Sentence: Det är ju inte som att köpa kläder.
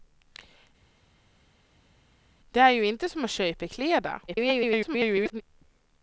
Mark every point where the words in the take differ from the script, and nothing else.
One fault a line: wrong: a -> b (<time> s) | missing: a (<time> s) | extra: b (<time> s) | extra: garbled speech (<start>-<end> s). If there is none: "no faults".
extra: garbled speech (4.3-5.4 s)